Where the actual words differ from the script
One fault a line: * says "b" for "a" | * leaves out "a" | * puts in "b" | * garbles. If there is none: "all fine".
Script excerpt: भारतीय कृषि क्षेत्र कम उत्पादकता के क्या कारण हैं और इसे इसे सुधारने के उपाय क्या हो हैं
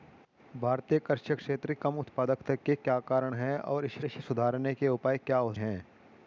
all fine